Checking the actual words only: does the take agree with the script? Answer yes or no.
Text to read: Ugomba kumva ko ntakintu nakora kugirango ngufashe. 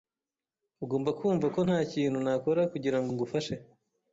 yes